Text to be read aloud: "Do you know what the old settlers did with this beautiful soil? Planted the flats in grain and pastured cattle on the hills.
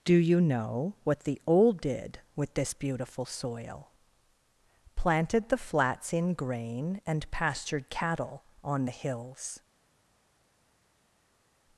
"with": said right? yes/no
yes